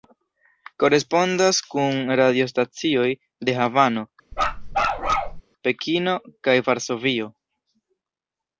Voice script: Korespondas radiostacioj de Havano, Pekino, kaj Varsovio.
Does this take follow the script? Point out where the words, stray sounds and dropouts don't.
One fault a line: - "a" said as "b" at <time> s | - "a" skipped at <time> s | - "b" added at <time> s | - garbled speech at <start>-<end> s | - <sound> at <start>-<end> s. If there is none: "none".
- "kun" added at 1.8 s
- bark at 4.3-5.4 s